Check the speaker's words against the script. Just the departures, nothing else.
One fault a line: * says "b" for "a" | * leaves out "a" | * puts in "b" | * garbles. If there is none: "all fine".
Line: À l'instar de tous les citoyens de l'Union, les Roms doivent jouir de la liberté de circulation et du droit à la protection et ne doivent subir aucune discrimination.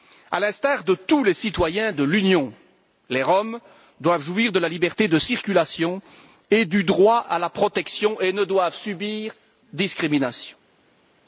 * leaves out "aucune"